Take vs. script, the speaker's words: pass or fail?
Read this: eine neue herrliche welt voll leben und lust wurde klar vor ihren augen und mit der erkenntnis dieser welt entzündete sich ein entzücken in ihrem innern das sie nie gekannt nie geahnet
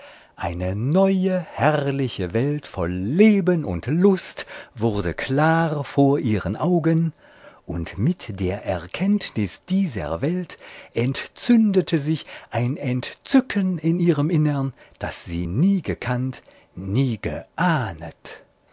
pass